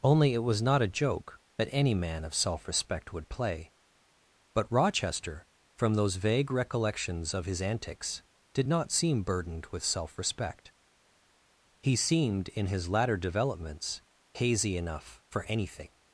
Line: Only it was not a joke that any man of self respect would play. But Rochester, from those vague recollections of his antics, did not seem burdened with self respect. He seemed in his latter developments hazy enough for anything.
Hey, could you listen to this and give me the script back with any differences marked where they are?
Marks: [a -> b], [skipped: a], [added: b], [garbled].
Only it was not a joke that any man of self respect would play. But Rochester, from those vague recollections of his antics, did not seem burdened with self respect. He seemed in his latter developments hazy enough for anything.